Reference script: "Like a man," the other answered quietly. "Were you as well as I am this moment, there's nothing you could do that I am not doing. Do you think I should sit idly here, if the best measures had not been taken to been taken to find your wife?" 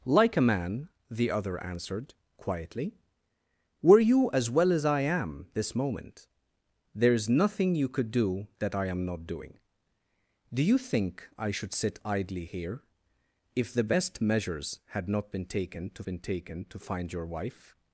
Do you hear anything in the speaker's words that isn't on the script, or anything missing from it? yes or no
no